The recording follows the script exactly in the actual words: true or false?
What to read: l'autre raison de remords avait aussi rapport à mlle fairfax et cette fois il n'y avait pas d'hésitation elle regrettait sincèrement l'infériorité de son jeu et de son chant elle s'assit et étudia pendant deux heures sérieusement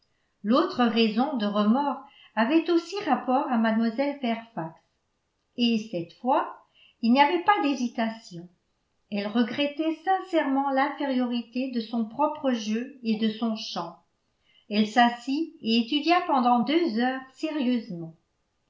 false